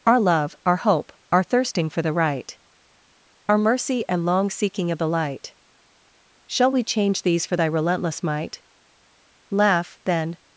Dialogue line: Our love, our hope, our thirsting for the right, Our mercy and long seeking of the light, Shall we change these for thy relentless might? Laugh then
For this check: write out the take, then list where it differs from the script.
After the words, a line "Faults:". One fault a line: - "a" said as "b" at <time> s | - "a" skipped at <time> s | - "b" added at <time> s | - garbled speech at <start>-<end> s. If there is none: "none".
Our love, our hope, our thirsting for the right, Our mercy and long seeking of the light, Shall we change these for thy relentless might? Laugh then
Faults:
none